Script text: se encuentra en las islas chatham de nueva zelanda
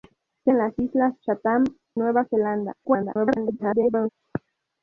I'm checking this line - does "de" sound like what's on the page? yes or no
no